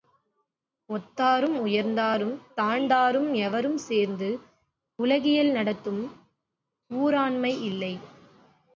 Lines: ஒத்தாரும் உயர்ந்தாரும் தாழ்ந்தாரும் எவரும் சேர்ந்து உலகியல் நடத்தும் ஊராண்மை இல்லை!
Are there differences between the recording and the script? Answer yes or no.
no